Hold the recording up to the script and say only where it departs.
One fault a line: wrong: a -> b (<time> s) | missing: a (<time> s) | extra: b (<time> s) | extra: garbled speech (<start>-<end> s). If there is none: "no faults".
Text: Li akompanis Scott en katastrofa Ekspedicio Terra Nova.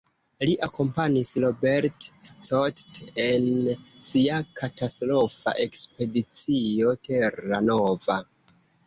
extra: Robert (1.4 s)
extra: sia (4.0 s)